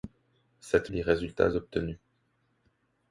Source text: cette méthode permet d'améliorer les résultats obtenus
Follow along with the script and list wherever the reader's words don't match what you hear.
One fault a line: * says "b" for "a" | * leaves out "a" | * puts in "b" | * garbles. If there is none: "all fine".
* leaves out "méthode permet d'améliorer"